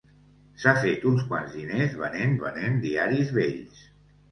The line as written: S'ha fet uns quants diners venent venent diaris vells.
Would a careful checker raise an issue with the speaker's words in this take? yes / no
no